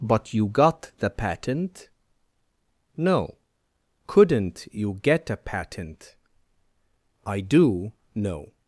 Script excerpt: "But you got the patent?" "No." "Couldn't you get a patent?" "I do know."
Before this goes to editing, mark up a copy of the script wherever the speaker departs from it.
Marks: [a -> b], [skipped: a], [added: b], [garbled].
"But you got the patent?" "No." "Couldn't you get a patent?" "I do know."